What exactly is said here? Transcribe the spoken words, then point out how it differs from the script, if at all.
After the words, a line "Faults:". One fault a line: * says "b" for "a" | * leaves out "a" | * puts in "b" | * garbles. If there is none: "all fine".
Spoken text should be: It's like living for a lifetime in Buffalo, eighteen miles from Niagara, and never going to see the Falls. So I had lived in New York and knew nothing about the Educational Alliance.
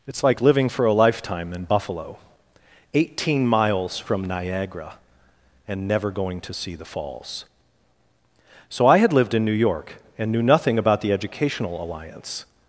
It's like living for a lifetime in Buffalo, eighteen miles from Niagara, and never going to see the Falls. So I had lived in New York and knew nothing about the Educational Alliance.
Faults:
all fine